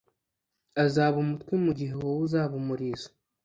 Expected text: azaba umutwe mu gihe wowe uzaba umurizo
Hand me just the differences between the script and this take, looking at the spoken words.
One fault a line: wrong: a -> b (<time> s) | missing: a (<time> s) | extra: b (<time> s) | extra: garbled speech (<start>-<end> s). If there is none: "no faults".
no faults